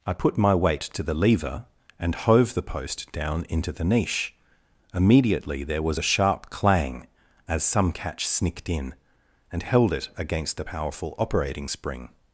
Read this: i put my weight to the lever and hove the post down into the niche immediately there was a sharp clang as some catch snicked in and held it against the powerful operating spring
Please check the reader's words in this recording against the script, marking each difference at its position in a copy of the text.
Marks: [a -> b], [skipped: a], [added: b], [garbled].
i put my weight to the lever and hove the post down into the niche immediately there was a sharp clang as some catch snicked in and held it against the powerful operating spring